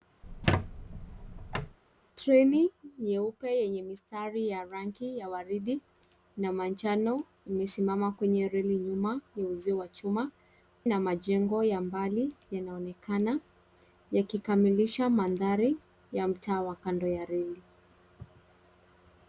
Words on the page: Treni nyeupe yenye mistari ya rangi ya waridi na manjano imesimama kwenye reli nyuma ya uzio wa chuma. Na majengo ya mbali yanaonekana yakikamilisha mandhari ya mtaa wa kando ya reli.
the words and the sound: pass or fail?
fail